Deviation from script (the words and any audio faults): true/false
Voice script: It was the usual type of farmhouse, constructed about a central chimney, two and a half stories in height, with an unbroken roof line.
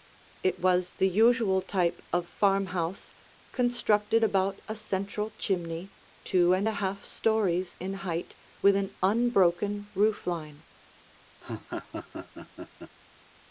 true